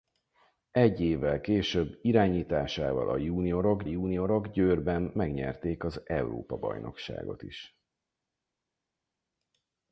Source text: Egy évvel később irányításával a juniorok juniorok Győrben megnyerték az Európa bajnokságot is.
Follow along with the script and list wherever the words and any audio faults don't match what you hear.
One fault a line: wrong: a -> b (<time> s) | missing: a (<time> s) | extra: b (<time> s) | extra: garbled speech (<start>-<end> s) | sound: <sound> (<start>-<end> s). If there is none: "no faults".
no faults